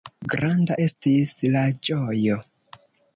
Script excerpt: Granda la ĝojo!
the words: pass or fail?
fail